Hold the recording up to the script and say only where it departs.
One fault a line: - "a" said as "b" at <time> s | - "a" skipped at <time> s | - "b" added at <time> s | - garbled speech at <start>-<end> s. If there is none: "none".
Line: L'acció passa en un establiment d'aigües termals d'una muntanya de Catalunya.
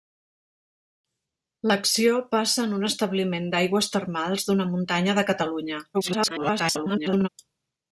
- garbled speech at 5.9-7.3 s